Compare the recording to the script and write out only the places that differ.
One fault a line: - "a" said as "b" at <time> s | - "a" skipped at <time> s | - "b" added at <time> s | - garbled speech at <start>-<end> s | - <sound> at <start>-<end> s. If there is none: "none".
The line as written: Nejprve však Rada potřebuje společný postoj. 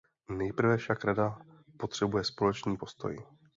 none